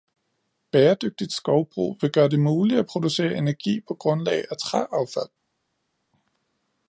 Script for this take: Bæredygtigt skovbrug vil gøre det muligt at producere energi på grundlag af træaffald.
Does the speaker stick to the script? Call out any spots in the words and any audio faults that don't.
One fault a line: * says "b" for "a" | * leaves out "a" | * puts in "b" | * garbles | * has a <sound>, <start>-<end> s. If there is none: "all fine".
all fine